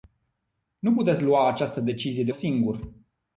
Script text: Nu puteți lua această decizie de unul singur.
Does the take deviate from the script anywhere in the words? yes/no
yes